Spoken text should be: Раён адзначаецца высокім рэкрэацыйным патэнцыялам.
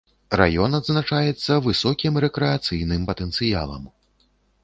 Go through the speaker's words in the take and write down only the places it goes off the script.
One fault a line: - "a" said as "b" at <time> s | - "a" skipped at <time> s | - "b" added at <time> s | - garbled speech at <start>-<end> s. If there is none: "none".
none